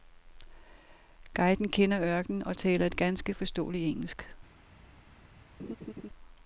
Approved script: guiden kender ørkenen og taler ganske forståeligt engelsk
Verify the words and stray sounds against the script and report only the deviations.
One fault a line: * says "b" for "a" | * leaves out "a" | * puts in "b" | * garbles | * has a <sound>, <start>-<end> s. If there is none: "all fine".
* puts in "et"
* has a laugh, 5.6-6.1 s